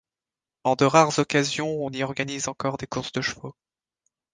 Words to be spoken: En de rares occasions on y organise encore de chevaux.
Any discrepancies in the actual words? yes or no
yes